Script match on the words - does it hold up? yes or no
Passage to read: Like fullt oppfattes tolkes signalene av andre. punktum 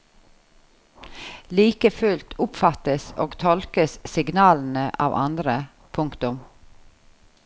no